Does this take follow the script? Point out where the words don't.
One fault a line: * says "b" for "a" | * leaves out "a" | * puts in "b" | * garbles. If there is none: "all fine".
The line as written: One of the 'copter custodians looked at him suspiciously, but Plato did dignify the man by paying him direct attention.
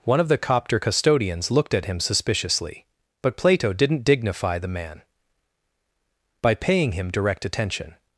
* says "didn't" for "did"